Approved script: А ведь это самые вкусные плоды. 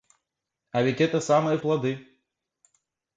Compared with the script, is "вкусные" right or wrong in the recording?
wrong